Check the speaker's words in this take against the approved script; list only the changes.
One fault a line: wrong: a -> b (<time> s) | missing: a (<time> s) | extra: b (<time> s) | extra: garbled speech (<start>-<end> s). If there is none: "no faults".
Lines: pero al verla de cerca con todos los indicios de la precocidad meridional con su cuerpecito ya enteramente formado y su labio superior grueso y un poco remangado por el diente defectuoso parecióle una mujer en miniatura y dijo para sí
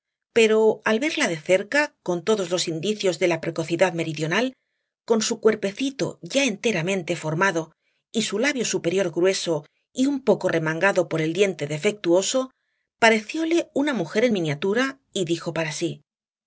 no faults